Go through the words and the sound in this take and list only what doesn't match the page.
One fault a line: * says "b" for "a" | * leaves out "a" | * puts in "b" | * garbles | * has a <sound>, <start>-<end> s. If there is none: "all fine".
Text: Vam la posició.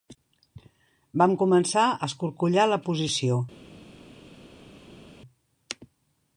* puts in "començar a escorcollar"